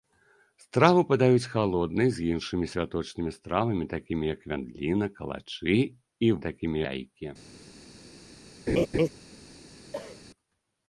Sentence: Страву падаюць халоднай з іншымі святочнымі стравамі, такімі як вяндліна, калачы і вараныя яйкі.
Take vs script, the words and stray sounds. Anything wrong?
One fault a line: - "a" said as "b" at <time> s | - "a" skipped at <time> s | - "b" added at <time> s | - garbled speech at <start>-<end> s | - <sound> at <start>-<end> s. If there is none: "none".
- "вараныя" said as "такімі" at 6.5 s
- laugh at 8.7-9.1 s
- cough at 9.9-10.2 s